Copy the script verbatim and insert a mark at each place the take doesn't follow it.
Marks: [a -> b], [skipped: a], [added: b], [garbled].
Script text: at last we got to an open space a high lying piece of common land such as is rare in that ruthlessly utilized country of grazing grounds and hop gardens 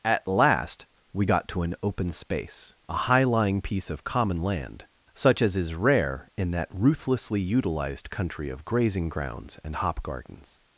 at last we got to an open space a high lying piece of common land such as is rare in that ruthlessly utilized country of grazing grounds and hop gardens